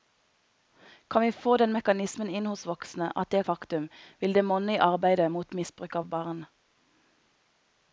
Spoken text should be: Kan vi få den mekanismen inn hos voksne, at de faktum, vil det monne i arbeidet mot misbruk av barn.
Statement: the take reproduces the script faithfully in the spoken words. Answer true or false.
true